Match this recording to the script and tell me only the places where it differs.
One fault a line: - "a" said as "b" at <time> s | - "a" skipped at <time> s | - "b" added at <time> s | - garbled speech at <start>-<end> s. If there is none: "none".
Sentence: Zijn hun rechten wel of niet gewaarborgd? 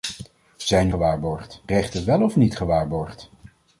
- "hun" said as "gewaarborgd" at 0.9 s